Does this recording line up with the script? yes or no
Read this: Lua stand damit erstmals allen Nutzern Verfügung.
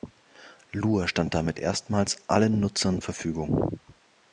yes